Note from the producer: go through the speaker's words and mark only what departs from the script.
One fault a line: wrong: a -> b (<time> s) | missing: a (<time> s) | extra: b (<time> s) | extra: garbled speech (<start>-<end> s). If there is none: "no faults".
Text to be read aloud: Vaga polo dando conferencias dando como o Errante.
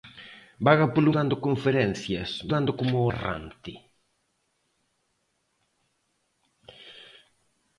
no faults